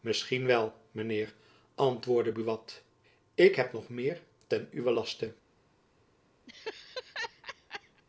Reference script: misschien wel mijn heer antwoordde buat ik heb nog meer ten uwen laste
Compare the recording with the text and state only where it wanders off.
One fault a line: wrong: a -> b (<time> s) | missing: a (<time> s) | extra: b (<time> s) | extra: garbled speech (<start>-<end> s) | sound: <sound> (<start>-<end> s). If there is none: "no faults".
sound: laugh (6.5-8.0 s)